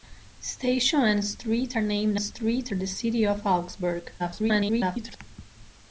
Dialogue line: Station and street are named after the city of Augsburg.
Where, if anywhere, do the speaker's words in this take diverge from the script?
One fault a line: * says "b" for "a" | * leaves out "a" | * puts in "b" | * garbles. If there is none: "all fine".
* says "street" for "after"
* garbles